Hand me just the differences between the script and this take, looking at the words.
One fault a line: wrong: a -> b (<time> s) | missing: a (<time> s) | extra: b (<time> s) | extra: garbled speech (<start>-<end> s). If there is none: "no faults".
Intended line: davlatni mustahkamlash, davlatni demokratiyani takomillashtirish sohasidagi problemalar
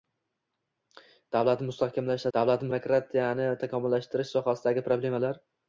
no faults